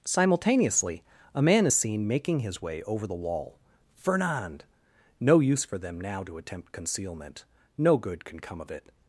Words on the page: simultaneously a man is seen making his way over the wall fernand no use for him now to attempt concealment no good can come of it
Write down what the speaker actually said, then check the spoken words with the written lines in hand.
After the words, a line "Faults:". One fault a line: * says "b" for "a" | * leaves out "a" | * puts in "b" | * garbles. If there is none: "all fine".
simultaneously a man is seen making his way over the wall fernand no use for them now to attempt concealment no good can come of it
Faults:
* says "them" for "him"